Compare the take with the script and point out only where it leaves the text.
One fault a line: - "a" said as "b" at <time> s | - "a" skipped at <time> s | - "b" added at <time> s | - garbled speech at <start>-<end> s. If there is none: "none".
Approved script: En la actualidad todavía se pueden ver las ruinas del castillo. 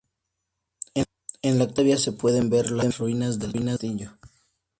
none